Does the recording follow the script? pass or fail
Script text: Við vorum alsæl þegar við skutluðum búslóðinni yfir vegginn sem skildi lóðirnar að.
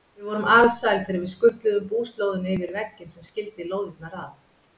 pass